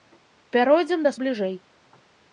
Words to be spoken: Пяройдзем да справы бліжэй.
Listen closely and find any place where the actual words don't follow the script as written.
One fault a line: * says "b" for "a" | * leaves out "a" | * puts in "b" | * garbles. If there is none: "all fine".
* leaves out "справы"